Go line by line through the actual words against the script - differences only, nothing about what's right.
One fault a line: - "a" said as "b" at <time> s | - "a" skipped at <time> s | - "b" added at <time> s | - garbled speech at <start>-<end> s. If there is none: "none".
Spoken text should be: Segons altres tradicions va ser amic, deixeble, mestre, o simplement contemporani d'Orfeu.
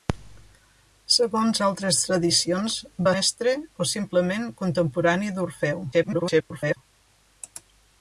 - "ser amic deixeble" skipped at 3.1 s
- garbled speech at 5.9-6.8 s